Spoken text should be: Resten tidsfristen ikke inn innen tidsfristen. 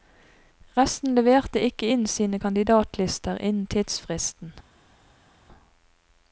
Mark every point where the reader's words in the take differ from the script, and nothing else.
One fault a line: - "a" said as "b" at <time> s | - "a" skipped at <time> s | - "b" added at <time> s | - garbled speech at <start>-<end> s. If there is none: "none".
- "tidsfristen" said as "leverte" at 1.1 s
- "sine kandidatlister" added at 2.1 s